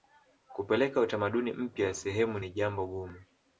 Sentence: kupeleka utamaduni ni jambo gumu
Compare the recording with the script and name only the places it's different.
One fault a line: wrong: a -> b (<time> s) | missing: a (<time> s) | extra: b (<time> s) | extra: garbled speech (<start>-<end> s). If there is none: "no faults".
extra: mpya sehemu (1.5 s)